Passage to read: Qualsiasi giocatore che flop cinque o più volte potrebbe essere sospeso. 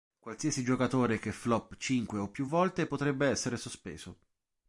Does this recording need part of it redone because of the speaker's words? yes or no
no